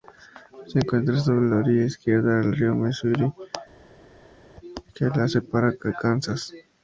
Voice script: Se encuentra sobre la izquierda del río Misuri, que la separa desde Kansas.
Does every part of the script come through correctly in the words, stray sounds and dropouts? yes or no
no